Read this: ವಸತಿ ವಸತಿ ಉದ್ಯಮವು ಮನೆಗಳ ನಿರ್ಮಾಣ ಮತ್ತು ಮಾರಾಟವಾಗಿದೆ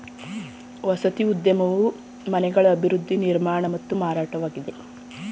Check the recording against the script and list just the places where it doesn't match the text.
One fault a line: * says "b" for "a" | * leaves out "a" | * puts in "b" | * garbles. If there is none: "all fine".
* leaves out "ವಸತಿ"
* puts in "ಅಭಿವೃದ್ಧಿ"